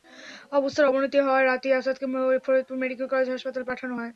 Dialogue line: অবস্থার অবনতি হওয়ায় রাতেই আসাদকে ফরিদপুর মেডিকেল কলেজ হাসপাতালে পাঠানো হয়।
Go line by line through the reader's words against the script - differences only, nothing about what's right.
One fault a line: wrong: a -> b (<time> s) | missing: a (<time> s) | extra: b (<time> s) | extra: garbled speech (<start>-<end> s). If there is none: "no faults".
no faults